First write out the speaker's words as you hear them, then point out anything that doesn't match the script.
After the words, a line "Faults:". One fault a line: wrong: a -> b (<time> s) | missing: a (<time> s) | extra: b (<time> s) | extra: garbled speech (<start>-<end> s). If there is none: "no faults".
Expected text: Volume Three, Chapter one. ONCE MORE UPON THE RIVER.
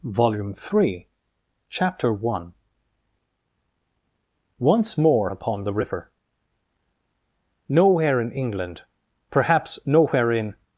Volume Three, Chapter one. ONCE MORE UPON THE RIVER. Nowhere in England, perhaps nowhere in
Faults:
extra: Nowhere in England perhaps nowhere in (7.7 s)